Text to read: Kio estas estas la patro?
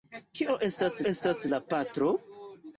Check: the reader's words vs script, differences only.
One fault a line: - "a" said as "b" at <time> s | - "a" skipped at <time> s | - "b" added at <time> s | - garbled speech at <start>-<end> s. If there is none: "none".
none